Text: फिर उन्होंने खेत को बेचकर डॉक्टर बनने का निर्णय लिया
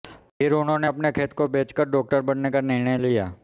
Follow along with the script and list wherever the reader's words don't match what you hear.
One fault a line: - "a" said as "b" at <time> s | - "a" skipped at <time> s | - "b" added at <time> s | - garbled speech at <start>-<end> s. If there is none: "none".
- "अपने" added at 0.8 s